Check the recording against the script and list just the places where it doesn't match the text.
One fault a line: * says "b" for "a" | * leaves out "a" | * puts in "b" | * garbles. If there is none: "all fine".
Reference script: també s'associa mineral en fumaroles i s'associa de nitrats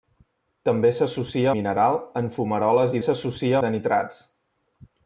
all fine